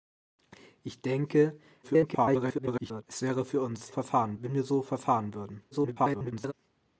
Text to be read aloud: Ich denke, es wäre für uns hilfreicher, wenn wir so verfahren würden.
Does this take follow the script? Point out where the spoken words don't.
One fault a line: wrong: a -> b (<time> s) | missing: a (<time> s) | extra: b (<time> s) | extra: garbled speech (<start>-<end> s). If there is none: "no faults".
extra: garbled speech (1.8-3.0 s)
wrong: hilfreicher -> verfahren (3.9 s)
extra: garbled speech (5.7-6.5 s)